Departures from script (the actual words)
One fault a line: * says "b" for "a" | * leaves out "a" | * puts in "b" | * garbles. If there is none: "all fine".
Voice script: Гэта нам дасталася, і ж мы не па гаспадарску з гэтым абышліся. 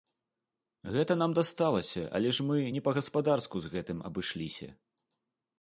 * says "але" for "і"